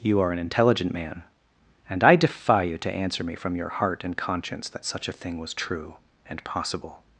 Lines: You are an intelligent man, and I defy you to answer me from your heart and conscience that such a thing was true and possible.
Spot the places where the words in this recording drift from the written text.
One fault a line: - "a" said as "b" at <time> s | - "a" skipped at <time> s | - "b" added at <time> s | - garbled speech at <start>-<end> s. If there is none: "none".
none